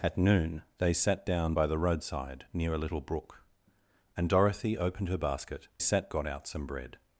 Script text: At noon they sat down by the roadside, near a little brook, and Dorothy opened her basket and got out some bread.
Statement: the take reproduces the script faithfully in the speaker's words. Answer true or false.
false